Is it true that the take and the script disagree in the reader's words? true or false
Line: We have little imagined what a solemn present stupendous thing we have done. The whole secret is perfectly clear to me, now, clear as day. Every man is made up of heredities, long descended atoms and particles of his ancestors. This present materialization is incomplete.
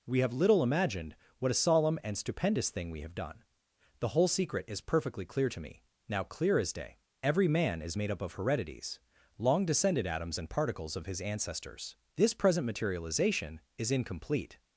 true